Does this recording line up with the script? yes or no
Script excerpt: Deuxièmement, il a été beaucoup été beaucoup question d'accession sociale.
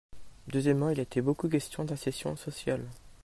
no